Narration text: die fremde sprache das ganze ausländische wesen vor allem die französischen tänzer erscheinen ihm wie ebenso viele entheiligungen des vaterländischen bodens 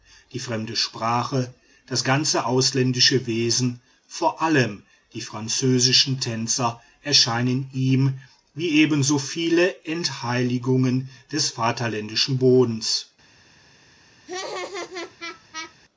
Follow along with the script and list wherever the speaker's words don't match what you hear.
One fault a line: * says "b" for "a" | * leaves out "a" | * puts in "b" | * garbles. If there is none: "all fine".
all fine